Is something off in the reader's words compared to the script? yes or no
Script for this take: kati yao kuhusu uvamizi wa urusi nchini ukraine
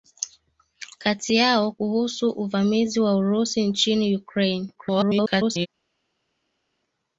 yes